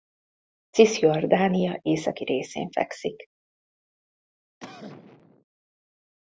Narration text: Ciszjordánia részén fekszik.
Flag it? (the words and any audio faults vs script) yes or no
yes